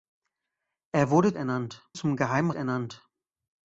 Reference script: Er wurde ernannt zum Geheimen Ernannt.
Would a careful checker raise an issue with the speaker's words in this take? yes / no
no